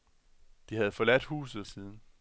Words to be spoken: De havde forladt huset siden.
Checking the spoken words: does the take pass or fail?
pass